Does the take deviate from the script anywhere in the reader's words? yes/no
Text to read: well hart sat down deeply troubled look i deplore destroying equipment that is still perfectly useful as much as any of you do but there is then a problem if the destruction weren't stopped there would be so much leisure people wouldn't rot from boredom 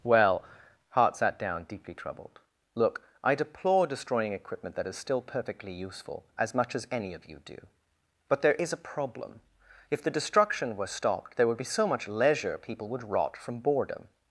yes